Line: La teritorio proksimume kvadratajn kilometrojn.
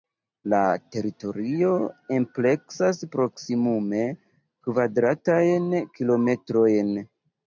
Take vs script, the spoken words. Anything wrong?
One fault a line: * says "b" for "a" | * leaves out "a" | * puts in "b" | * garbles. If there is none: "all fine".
* puts in "ampleksas"